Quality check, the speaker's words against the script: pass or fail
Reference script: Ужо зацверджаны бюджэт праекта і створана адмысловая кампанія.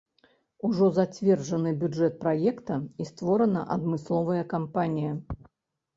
pass